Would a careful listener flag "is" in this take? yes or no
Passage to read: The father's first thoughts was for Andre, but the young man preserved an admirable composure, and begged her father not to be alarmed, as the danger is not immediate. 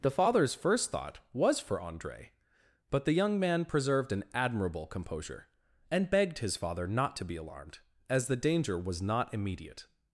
yes